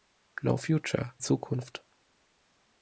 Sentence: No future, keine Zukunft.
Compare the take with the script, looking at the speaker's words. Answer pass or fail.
fail